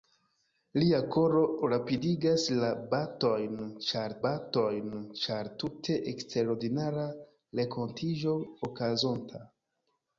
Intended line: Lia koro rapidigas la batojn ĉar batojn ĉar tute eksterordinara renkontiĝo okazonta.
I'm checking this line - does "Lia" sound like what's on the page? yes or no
yes